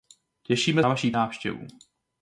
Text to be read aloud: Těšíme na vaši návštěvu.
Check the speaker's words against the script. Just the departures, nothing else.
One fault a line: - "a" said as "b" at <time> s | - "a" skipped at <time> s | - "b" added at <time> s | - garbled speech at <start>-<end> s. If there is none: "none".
none